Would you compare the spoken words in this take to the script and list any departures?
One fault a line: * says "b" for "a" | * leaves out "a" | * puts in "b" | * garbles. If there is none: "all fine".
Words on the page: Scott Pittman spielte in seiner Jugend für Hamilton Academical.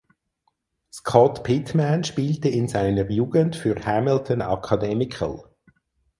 all fine